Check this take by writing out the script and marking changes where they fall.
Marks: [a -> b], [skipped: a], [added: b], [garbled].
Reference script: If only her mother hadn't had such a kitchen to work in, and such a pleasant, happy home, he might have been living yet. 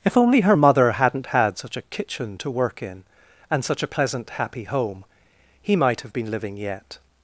If only her mother hadn't had such a kitchen to work in, and such a pleasant, happy home, he might have been living yet.